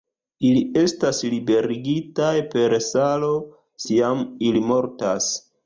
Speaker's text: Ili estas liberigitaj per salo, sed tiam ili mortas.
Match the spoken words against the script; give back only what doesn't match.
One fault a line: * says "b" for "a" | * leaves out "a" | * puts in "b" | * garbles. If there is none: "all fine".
* leaves out "sed"